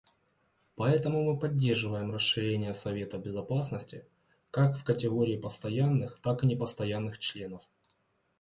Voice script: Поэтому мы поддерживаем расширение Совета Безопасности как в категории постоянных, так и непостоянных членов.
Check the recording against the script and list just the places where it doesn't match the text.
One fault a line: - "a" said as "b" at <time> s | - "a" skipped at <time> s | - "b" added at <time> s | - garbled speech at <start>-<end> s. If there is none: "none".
none